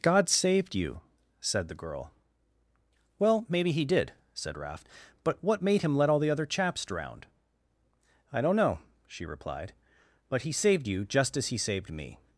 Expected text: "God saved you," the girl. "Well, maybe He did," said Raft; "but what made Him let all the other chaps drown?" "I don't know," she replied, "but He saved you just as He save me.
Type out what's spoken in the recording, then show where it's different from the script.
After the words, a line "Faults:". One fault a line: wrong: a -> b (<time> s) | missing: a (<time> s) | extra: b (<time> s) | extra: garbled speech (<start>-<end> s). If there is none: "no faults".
"God saved you," said the girl. "Well, maybe He did," said Raft; "but what made Him let all the other chaps drown?" "I don't know," she replied, "but He saved you just as He saved me.
Faults:
extra: said (1.4 s)
wrong: save -> saved (11.6 s)